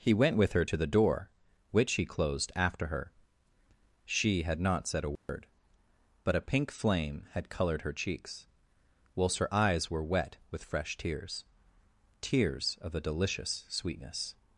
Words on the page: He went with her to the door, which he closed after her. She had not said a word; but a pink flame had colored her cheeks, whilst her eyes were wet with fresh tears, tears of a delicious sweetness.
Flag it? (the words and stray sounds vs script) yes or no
yes